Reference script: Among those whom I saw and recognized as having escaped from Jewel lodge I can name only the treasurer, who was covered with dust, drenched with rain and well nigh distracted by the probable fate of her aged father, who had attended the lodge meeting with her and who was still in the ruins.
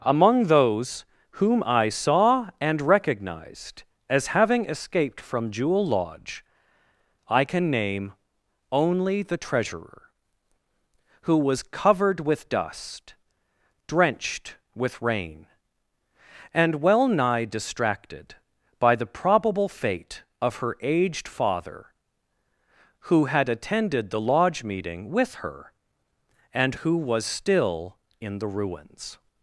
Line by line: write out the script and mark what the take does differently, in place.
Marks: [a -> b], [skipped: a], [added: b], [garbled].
Among those whom I saw and recognized as having escaped from Jewel lodge I can name only the treasurer, who was covered with dust, drenched with rain and well nigh distracted by the probable fate of her aged father, who had attended the lodge meeting with her and who was still in the ruins.